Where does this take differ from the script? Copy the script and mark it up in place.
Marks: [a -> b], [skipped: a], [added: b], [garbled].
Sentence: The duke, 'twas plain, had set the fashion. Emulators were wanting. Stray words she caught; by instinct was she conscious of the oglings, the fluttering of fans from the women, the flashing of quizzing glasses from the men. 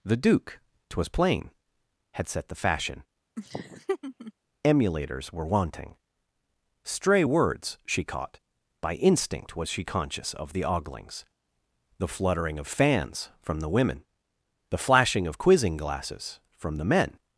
The duke, 'twas plain, had set the fashion. Emulators were wanting. Stray words she caught; by instinct was she conscious of the oglings, the fluttering of fans from the women, the flashing of quizzing glasses from the men.